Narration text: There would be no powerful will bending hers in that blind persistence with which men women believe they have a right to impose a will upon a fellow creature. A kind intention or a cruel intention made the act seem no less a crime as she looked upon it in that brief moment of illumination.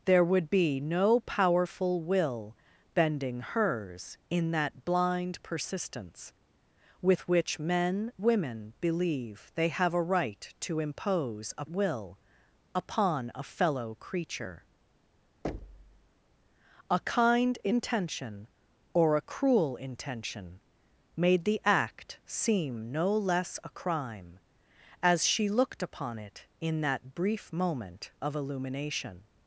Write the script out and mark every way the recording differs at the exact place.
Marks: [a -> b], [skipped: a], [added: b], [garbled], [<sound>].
There would be no powerful will bending hers in that blind persistence with which men women believe they have a right to impose a will upon a fellow creature. [thud] A kind intention or a cruel intention made the act seem no less a crime as she looked upon it in that brief moment of illumination.